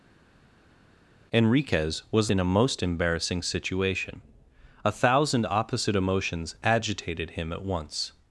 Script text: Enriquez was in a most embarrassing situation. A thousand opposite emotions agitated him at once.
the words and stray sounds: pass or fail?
pass